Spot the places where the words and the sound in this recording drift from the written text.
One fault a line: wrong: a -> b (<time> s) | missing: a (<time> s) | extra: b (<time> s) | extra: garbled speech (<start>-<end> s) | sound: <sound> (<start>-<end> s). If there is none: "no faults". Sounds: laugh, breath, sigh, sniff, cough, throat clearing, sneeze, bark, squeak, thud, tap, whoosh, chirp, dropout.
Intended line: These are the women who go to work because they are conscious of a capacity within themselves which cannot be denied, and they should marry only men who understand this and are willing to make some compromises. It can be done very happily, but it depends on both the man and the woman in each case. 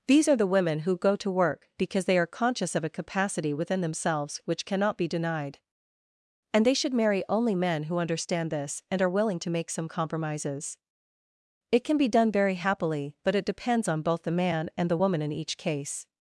no faults